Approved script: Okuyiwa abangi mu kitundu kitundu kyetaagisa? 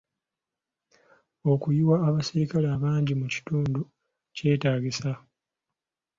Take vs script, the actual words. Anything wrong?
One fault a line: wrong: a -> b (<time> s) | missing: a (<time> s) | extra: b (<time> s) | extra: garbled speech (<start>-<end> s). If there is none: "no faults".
extra: abaserikale (2.1 s)
missing: kitundu (3.8 s)